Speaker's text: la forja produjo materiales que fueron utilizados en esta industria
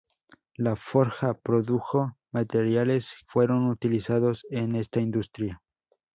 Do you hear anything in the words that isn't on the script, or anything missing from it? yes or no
yes